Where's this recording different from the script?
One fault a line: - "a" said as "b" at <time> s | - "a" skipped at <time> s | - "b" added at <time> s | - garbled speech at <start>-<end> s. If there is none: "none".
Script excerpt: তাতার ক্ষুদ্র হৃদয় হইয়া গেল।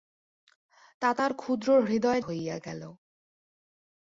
none